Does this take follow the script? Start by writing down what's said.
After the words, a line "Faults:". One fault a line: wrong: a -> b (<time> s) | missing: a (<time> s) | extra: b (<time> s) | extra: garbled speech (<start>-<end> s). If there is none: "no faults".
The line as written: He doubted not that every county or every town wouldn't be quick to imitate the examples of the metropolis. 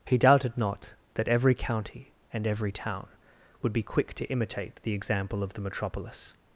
He doubted not that every county and every town would be quick to imitate the example of the metropolis.
Faults:
wrong: or -> and (2.3 s)
wrong: wouldn't -> would (3.6 s)
wrong: examples -> example (4.9 s)